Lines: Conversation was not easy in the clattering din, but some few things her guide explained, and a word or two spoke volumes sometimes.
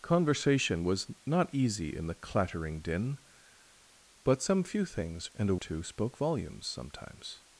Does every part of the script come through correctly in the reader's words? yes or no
no